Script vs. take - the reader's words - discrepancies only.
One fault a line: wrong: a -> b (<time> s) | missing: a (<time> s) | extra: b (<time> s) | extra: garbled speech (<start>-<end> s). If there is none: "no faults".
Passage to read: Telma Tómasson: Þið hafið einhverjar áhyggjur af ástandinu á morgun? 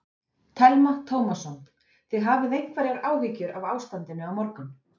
no faults